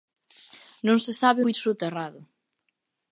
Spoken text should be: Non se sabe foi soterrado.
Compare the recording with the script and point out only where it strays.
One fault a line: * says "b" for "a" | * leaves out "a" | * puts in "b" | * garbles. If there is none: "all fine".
all fine